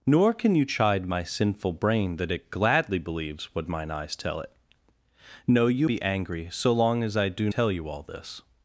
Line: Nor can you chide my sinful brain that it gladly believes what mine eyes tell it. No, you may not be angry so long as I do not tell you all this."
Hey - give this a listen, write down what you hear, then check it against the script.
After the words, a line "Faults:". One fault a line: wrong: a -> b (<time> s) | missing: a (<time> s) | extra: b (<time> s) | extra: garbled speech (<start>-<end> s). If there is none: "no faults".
Nor can you chide my sinful brain that it gladly believes what mine eyes tell it. No, you be angry so long as I do tell you all this."
Faults:
missing: may not (5.9 s)
missing: not (7.5 s)